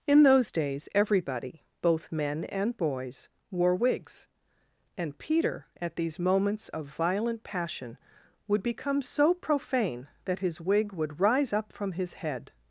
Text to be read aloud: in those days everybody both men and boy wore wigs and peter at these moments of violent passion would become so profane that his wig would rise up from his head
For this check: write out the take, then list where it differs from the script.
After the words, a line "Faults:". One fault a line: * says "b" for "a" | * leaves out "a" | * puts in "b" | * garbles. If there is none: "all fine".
in those days everybody both men and boys wore wigs and peter at these moments of violent passion would become so profane that his wig would rise up from his head
Faults:
* says "boys" for "boy"